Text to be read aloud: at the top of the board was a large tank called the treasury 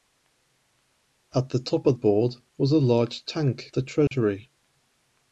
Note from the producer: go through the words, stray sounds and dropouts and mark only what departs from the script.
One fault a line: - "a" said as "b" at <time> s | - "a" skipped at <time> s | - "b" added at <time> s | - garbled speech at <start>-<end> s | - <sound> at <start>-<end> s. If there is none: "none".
- "the" skipped at 1.9 s
- "called" skipped at 3.7 s
- dropout at 4.1-4.1 s